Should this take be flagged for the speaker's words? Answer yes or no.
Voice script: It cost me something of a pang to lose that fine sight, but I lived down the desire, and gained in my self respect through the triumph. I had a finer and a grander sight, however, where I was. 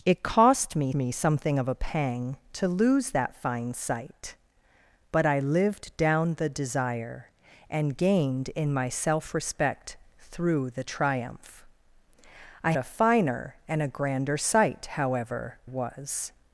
yes